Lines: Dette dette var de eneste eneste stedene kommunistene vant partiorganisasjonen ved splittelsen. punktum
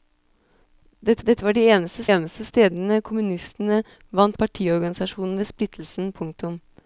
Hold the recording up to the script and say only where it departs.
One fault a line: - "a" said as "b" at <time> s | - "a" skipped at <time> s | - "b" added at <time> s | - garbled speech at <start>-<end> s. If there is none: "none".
none